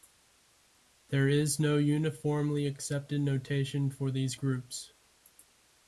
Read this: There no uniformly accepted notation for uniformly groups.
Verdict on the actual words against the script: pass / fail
fail